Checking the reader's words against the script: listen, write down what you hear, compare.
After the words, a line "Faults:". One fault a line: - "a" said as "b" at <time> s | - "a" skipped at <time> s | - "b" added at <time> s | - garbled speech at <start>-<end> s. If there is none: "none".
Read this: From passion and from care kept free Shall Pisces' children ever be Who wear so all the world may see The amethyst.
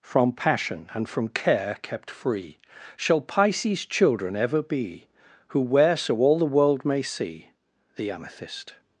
From passion and from care kept free Shall Pisces' children ever be Who wear so all the world may see The amethyst.
Faults:
none